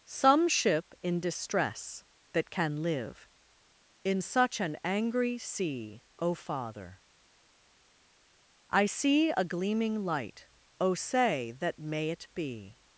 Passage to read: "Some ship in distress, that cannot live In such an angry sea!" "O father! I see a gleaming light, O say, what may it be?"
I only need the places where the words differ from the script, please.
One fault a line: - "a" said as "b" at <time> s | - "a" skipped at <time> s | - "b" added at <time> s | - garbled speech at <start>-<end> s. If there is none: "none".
- "cannot" said as "can" at 2.5 s
- "what" said as "that" at 11.5 s